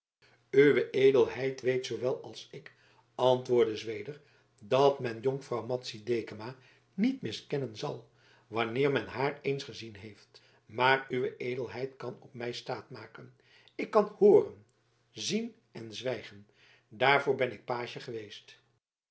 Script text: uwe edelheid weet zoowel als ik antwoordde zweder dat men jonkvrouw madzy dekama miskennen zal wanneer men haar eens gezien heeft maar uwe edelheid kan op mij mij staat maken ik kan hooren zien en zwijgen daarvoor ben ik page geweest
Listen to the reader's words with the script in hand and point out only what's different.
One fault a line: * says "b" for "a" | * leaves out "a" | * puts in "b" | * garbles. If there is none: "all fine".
* puts in "niet"
* leaves out "mij"